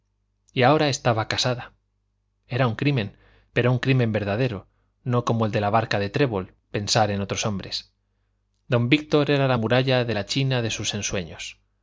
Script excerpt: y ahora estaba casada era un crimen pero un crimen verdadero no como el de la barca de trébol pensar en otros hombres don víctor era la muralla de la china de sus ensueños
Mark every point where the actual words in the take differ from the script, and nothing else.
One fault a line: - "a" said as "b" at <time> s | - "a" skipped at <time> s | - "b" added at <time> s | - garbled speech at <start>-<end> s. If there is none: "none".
none